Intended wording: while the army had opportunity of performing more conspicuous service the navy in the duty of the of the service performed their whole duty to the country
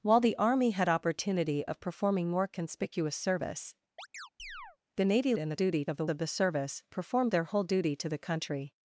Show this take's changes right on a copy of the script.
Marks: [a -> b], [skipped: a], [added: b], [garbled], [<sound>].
while the army had opportunity of performing more conspicuous service [chirp] the navy in the duty of the of the service performed their whole duty to the country